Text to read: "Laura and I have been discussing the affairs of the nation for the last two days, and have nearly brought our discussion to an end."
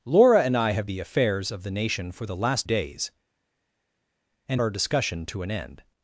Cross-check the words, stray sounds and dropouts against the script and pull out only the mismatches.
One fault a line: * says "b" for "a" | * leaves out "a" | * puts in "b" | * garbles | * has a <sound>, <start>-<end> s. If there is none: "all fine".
* leaves out "been discussing"
* leaves out "two"
* leaves out "have nearly brought"